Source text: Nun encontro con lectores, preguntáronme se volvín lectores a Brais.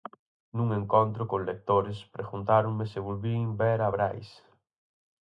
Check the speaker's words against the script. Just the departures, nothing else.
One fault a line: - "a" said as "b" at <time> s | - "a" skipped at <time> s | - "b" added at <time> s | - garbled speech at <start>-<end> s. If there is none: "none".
- "lectores" said as "ver" at 3.6 s